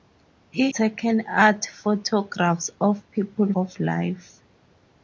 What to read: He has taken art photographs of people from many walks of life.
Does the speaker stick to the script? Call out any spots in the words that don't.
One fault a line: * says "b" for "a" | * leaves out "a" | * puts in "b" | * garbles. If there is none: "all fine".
* leaves out "has"
* leaves out "from many walks"